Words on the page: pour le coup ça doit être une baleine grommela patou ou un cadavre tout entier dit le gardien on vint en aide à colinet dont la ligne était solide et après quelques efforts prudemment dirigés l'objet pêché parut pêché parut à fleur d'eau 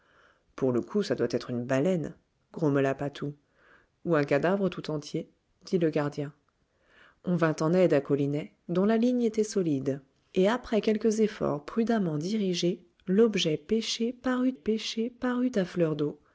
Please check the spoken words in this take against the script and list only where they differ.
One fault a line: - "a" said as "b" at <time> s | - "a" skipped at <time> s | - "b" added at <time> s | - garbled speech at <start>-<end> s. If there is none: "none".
none